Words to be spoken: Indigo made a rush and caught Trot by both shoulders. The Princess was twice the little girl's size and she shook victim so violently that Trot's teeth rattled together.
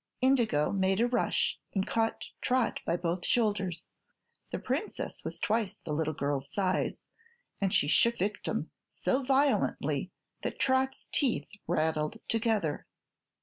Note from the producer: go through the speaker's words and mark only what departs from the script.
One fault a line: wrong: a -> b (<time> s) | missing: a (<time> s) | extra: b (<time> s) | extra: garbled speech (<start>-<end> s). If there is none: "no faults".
no faults